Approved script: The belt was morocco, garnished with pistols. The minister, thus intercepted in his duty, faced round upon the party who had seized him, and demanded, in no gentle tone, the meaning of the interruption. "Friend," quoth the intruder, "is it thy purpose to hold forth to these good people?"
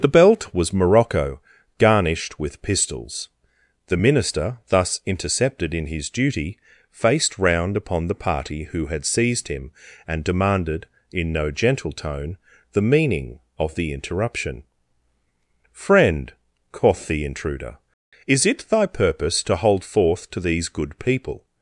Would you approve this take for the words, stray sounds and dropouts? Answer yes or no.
yes